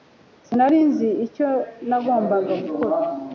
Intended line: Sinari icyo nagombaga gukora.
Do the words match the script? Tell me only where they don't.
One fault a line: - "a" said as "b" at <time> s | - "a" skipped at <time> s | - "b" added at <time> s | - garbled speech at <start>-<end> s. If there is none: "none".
- "nzi" added at 0.9 s